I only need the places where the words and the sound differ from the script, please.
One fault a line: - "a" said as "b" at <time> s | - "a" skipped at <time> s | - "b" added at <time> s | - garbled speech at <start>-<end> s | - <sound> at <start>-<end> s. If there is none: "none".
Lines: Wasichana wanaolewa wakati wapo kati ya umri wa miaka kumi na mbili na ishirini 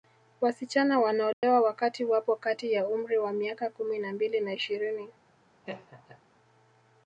- dropout at 1.3-1.4 s
- laugh at 5.6-6.2 s